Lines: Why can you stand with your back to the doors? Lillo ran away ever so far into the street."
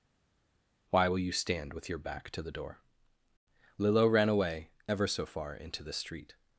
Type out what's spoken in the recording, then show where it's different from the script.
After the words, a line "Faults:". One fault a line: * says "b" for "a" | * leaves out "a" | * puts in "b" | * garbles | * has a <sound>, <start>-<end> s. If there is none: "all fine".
Why will you stand with your back to the door? Lillo ran away ever so far into the street."
Faults:
* says "will" for "can"
* says "door" for "doors"